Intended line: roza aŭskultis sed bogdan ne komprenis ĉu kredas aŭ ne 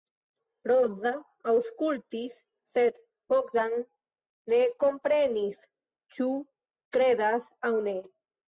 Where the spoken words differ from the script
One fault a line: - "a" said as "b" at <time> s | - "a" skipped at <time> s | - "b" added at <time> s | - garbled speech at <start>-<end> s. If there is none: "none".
none